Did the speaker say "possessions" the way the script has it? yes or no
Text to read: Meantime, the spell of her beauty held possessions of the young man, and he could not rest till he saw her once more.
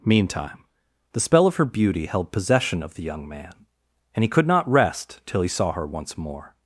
no